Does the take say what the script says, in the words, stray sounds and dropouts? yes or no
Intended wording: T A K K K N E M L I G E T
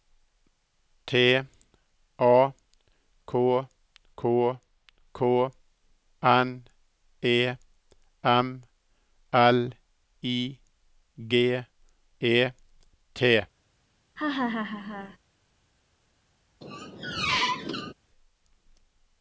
no